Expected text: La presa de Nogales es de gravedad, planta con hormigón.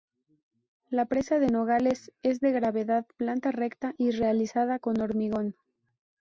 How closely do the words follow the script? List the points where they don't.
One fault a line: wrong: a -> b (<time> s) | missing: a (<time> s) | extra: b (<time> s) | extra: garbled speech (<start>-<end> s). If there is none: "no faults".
extra: recta y realizada (3.5 s)